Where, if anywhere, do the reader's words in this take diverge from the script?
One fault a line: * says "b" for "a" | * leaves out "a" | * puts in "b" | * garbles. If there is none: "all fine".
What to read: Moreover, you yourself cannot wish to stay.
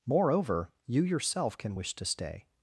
* says "can" for "cannot"